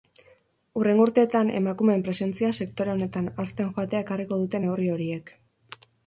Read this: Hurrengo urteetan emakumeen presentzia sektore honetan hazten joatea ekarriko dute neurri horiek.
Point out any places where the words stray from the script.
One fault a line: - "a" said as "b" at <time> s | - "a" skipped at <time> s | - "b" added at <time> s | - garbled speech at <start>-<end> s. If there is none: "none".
none